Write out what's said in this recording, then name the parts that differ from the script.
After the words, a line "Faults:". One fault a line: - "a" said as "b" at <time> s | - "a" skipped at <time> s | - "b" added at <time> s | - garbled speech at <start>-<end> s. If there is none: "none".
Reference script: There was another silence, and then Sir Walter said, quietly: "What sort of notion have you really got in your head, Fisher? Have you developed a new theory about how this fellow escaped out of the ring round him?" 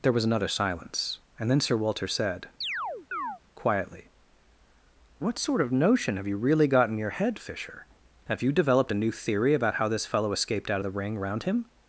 There was another silence, and then Sir Walter said, quietly: "What sort of notion have you really got in your head, Fisher? Have you developed a new theory about how this fellow escaped out of the ring round him?"
Faults:
none